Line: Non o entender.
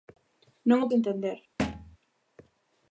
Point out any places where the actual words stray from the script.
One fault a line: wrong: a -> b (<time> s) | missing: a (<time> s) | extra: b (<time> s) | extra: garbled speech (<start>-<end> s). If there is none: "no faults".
no faults